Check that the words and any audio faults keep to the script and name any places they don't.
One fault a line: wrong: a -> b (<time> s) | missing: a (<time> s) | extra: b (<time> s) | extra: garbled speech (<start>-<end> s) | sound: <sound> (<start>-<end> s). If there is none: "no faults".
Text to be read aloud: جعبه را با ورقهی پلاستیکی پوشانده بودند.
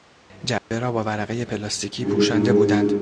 sound: dropout (0.6-0.7 s)